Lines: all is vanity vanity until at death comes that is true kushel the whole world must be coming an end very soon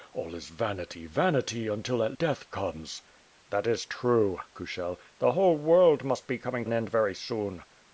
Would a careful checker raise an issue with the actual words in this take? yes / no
no